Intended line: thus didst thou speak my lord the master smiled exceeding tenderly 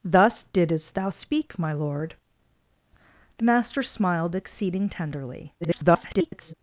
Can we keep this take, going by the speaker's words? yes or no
no